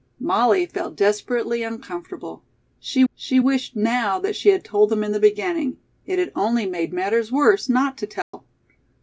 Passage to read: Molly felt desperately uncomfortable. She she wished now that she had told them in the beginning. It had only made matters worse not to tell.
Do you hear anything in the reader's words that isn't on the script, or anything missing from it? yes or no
no